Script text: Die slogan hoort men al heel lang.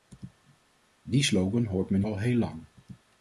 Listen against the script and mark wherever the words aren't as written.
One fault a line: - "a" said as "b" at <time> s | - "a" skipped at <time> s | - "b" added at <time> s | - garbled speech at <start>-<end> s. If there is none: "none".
none